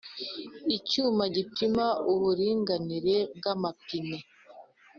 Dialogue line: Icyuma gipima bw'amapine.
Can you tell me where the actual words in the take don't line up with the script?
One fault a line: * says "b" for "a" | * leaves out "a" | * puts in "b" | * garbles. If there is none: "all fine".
* puts in "uburinganire"